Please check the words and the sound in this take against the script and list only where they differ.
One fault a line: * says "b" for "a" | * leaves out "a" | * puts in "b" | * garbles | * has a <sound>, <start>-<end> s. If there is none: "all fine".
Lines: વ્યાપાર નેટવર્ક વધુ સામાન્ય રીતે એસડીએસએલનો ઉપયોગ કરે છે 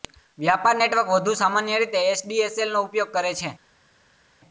all fine